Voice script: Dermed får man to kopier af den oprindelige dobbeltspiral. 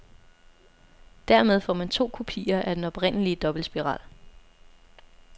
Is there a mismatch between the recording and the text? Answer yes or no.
no